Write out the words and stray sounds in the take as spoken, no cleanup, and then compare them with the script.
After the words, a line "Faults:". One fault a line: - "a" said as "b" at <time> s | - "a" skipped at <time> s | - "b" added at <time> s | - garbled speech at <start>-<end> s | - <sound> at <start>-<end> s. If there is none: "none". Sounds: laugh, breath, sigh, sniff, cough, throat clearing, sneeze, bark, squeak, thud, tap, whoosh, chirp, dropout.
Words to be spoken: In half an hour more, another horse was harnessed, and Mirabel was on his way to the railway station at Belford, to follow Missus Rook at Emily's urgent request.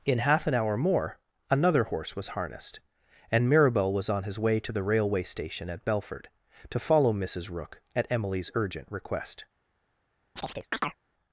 In half an hour more, another horse was harnessed, and Mirabel was on his way to the railway station at Belford, to follow Missus Rook at Emily's urgent request.
Faults:
- chirp at 10.4-11.0 s